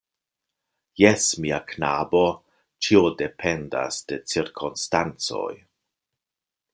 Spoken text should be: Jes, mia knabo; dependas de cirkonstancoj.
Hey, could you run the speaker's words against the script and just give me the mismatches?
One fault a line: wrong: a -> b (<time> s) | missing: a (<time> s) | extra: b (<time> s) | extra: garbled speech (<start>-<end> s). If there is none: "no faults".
extra: ĉio (2.9 s)